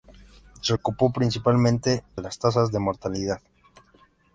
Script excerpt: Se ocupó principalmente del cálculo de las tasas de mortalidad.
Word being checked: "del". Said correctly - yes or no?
no